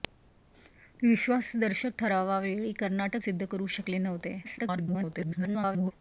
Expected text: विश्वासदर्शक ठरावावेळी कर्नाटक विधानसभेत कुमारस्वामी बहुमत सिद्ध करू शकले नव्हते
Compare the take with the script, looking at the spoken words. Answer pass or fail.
fail